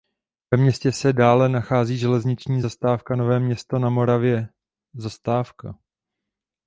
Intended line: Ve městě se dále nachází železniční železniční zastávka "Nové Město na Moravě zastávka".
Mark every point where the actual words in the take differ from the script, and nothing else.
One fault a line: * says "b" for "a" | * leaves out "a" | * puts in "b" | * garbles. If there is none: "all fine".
* leaves out "železniční"